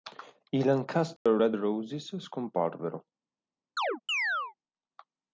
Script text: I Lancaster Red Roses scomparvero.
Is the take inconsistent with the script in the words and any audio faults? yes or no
yes